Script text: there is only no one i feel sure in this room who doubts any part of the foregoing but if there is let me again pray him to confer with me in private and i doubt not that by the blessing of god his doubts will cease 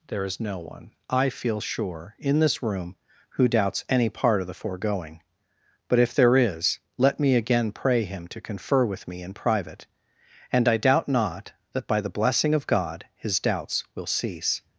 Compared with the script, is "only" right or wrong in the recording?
wrong